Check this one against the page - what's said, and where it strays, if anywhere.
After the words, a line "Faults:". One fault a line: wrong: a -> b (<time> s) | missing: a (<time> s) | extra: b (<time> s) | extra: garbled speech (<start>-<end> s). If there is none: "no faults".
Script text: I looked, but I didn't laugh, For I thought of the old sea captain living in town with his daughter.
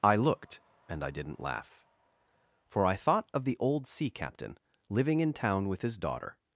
I looked, and I didn't laugh, For I thought of the old sea captain living in town with his daughter.
Faults:
wrong: but -> and (0.9 s)